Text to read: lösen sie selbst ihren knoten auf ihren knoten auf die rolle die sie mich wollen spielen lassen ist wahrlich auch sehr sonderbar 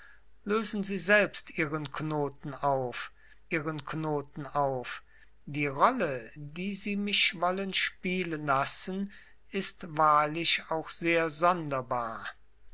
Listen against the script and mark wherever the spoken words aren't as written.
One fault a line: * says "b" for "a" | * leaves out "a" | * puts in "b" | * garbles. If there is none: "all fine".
all fine